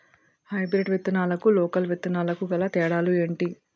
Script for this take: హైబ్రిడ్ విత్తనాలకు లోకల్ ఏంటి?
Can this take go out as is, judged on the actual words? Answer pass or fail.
fail